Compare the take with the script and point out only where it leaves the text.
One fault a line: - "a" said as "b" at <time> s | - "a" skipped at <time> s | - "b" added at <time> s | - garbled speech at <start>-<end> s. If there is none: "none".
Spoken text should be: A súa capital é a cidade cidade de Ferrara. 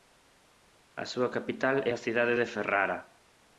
- "cidade" skipped at 2.3 s